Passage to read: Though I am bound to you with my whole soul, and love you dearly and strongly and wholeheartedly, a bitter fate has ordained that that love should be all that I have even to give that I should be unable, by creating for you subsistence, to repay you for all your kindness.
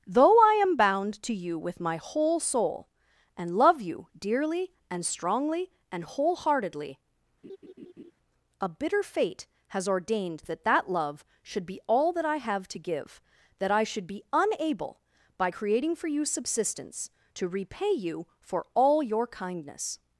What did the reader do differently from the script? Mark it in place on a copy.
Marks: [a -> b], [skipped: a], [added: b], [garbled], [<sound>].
Though I am bound to you with my whole soul, and love you dearly and strongly and wholeheartedly, [laugh] a bitter fate has ordained that that love should be all that I have [skipped: even] to give that I should be unable, by creating for you subsistence, to repay you for all your kindness.